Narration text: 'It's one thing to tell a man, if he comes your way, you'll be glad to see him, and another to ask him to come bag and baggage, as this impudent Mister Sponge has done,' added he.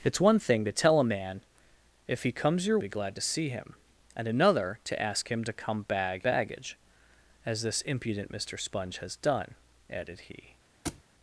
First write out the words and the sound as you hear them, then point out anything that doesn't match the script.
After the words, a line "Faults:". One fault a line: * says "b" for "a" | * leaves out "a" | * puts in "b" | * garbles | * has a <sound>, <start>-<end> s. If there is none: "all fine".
'It's one thing to tell a man, if he comes your be glad to see him, and another to ask him to come bag baggage, as this impudent Mister Sponge has done,' added he.
Faults:
* leaves out "way you'll"
* leaves out "and"
* has a thud, 10.8-11.0 s